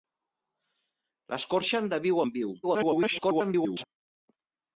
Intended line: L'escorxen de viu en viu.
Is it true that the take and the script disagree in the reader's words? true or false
true